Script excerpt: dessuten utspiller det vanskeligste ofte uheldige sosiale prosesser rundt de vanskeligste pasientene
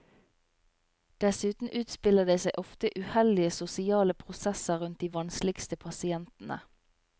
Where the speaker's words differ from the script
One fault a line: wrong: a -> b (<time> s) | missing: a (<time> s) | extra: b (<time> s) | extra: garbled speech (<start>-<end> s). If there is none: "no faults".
wrong: vanskeligste -> seg (2.4 s)